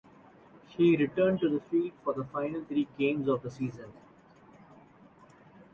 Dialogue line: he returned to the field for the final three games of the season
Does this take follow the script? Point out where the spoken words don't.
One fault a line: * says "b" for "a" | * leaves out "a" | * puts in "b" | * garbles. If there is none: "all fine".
all fine